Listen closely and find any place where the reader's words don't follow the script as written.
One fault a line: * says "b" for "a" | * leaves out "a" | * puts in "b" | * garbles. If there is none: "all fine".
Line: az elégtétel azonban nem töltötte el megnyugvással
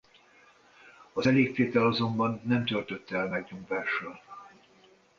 all fine